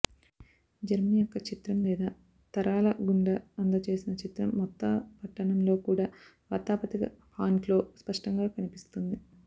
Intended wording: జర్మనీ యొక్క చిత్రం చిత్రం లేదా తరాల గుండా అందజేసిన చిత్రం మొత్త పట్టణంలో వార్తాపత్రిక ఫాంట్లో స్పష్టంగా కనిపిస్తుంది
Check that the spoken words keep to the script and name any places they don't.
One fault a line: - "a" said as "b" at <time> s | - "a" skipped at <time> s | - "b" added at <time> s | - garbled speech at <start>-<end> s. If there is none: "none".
- "చిత్రం" skipped at 1.8 s
- "కూడా" added at 5.9 s